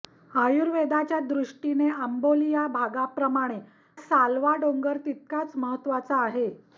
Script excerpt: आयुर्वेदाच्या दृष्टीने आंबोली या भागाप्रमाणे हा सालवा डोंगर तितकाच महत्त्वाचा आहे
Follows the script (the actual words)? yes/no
no